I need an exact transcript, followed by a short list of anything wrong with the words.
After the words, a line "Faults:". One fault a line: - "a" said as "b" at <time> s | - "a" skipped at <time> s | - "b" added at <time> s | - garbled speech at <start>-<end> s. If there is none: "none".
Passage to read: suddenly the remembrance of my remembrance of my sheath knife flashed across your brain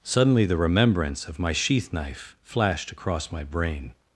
suddenly the remembrance of my sheath knife flashed across my brain
Faults:
- "remembrance of my" skipped at 1.5 s
- "your" said as "my" at 3.3 s